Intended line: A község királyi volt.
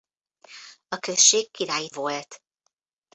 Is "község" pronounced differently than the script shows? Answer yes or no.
no